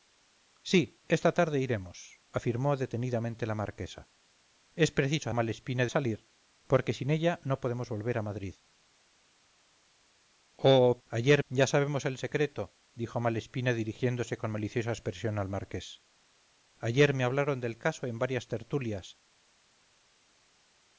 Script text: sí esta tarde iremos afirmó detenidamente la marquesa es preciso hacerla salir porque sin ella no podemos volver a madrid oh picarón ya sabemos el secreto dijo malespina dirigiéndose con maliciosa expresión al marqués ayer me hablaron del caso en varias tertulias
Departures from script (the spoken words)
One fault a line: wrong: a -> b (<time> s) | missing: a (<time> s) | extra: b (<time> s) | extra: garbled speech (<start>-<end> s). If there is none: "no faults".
wrong: hacerla -> malespina (5.3 s)
wrong: picarón -> ayer (11.1 s)